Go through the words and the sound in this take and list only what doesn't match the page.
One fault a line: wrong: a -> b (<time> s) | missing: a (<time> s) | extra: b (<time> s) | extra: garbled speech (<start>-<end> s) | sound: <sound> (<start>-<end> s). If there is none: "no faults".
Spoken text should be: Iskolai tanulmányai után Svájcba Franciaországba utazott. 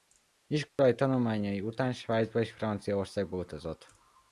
sound: dropout (0.7-0.8 s)
extra: és (2.4 s)